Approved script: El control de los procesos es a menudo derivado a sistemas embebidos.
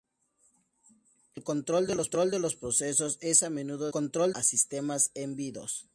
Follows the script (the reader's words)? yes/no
no